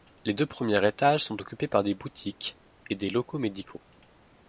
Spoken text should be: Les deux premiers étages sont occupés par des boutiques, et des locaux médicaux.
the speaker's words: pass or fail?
pass